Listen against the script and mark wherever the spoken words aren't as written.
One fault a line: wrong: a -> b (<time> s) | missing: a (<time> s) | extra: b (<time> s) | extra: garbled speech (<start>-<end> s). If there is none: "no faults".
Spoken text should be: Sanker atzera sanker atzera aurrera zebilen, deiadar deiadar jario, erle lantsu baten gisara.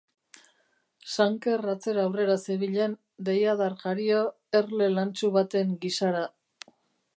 missing: sanker atzera (2.0 s)
missing: deiadar (3.8 s)